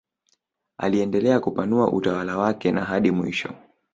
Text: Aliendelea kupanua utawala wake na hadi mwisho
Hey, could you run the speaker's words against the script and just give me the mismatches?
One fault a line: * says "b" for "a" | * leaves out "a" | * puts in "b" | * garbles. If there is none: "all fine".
all fine